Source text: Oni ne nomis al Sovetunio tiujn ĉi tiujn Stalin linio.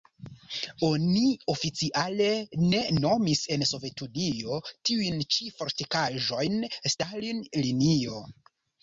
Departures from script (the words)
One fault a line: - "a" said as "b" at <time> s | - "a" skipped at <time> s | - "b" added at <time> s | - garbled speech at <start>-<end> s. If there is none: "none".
- "oficiale" added at 1.5 s
- "al" said as "en" at 3.5 s
- "tiujn" said as "fortikaĵojn" at 5.6 s